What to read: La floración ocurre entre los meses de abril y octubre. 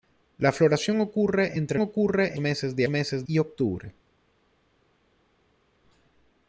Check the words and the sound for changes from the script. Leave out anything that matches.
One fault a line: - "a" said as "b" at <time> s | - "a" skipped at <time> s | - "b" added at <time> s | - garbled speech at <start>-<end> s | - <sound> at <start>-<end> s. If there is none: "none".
- "los" said as "ocurre" at 1.8 s
- "abril" said as "meses" at 2.9 s